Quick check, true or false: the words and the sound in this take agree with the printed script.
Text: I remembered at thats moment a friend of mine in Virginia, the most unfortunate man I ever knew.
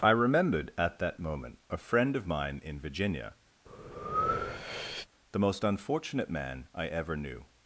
false